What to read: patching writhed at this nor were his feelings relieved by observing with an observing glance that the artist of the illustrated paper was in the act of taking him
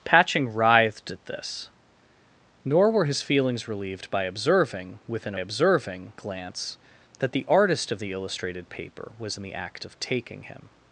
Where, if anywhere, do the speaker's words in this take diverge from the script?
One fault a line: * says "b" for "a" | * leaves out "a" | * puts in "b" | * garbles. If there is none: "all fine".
all fine